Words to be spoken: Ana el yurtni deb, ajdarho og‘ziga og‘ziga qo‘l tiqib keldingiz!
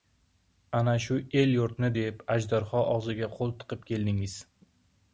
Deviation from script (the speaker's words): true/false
true